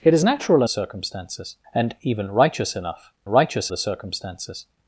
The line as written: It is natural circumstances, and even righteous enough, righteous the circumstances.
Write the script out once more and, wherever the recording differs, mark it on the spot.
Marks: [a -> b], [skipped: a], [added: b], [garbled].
It is natural circumstances, and even righteous enough, righteous the circumstances.